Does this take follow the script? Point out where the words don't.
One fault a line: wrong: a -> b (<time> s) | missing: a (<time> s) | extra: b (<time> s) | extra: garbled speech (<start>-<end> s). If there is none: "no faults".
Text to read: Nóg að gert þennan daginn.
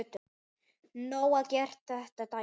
no faults